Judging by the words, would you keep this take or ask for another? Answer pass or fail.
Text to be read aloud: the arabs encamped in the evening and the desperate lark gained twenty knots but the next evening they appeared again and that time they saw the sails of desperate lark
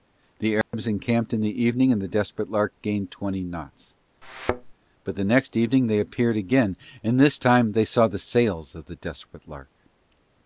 fail